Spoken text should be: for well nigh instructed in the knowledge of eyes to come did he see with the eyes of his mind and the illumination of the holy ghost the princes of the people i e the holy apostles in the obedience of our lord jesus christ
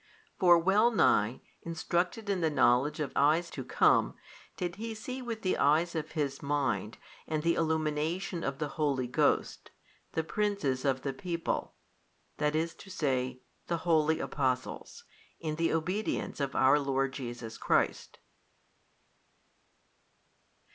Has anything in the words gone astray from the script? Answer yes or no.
no